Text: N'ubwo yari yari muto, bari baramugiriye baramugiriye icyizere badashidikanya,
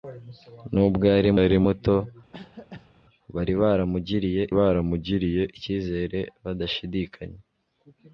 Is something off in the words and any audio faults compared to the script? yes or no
yes